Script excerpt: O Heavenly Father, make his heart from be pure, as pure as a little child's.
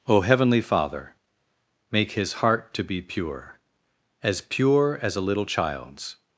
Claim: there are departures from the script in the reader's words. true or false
true